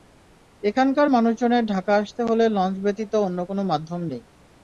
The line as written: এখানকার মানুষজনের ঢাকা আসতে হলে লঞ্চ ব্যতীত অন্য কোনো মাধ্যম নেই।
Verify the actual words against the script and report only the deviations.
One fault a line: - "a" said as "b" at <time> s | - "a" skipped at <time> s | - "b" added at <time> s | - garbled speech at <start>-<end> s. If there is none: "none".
none